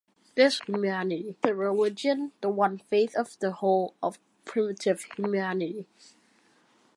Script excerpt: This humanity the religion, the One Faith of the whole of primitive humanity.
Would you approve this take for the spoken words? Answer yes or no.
yes